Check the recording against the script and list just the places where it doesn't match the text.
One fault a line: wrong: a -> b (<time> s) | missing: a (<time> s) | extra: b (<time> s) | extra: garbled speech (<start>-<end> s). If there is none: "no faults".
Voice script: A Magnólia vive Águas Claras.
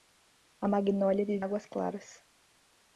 no faults